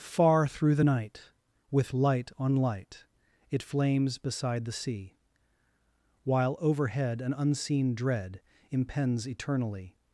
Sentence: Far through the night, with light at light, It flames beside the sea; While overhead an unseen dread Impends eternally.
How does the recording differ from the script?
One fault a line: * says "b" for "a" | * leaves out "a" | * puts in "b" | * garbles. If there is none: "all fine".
* says "on" for "at"